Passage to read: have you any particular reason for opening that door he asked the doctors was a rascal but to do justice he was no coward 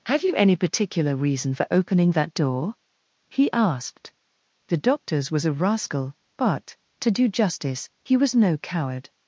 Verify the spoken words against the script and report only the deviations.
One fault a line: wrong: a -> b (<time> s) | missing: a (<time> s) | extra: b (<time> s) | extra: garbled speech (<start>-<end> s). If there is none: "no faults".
no faults